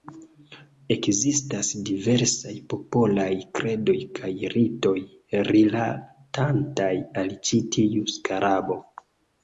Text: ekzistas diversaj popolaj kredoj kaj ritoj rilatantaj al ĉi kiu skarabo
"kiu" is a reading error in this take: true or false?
true